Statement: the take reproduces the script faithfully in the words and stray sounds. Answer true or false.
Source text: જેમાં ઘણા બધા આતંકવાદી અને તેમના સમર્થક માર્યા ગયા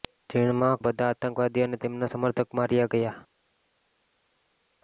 false